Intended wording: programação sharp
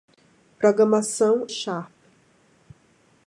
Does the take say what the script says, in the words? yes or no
yes